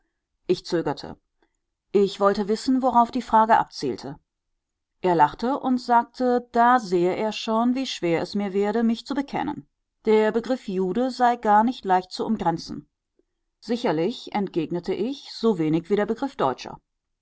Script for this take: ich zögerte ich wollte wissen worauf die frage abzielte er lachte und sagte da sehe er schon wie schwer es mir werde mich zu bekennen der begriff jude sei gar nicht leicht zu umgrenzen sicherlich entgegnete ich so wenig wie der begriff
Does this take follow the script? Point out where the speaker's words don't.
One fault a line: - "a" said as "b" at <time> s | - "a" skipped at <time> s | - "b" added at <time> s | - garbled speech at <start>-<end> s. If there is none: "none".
none